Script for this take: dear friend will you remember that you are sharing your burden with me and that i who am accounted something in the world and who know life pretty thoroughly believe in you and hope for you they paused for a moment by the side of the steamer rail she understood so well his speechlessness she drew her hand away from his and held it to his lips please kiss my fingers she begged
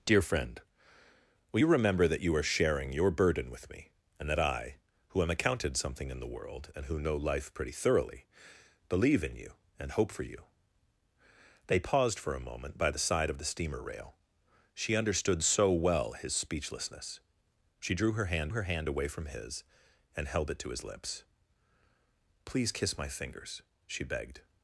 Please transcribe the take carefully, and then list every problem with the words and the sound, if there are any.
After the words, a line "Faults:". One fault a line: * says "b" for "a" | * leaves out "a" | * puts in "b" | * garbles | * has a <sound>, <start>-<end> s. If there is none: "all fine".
dear friend will you remember that you are sharing your burden with me and that i who am accounted something in the world and who know life pretty thoroughly believe in you and hope for you they paused for a moment by the side of the steamer rail she understood so well his speechlessness she drew her hand her hand away from his and held it to his lips please kiss my fingers she begged
Faults:
* puts in "her hand"